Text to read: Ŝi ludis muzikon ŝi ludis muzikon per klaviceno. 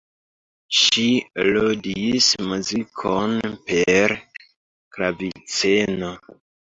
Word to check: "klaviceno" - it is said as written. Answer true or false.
true